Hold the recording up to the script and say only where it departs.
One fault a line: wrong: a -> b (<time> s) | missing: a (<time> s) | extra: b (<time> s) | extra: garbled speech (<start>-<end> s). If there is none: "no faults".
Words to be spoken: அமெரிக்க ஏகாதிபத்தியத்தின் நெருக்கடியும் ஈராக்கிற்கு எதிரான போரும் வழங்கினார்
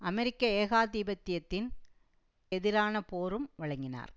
missing: நெருக்கடியும் ஈராக்கிற்கு (1.7 s)